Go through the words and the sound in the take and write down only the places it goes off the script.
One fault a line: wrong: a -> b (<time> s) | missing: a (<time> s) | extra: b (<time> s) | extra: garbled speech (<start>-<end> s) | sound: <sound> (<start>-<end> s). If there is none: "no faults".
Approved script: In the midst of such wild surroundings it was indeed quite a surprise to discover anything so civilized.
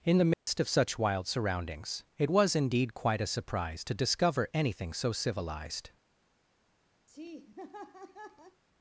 sound: dropout (0.3-0.5 s)
sound: laugh (7.1-8.6 s)